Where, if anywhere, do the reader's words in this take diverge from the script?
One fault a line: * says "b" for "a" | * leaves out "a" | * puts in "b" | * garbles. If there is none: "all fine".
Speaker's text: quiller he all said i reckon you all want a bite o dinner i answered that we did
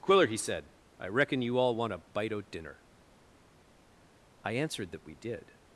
* leaves out "all"